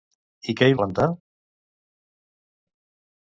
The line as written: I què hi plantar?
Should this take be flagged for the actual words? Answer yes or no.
no